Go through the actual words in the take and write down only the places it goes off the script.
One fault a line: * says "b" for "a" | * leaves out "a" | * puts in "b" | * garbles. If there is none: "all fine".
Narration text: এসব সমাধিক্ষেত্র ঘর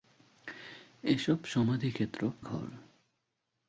all fine